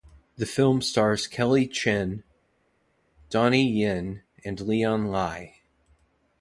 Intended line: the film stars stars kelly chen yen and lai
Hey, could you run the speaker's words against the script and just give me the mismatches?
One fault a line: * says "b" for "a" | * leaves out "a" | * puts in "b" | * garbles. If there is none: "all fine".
* leaves out "stars"
* puts in "donnie"
* puts in "leon"